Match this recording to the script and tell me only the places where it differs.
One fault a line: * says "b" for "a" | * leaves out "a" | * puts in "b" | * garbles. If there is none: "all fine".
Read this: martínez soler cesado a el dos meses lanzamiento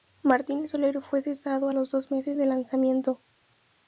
* puts in "fue"
* says "los" for "el"
* puts in "del"